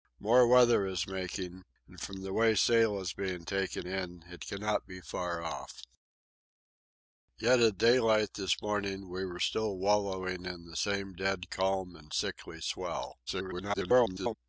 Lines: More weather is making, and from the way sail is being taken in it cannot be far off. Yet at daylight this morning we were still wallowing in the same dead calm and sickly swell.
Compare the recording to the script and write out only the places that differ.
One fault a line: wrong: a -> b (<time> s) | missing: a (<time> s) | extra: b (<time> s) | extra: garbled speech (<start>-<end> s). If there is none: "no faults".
extra: garbled speech (13.3-14.4 s)